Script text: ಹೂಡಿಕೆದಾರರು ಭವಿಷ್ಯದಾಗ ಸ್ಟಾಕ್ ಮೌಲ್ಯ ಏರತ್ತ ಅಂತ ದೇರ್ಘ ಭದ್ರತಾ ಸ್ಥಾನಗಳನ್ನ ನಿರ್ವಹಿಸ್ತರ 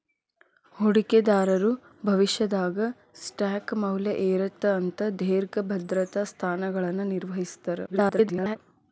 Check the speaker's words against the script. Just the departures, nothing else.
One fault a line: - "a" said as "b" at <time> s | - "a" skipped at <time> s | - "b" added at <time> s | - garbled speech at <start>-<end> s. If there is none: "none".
- garbled speech at 7.9-8.6 s